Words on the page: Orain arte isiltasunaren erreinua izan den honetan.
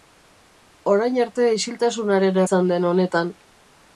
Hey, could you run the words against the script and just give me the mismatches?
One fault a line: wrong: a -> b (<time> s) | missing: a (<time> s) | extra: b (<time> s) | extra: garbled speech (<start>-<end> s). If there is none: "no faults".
missing: erreinua (2.4 s)